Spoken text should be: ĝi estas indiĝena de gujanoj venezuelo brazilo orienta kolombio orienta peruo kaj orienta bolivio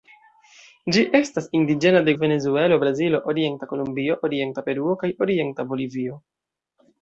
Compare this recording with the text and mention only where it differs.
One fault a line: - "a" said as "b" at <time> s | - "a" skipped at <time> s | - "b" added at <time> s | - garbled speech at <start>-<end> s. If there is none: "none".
- "gujanoj" skipped at 2.1 s